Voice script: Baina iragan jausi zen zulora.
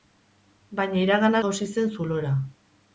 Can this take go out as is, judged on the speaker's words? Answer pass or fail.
pass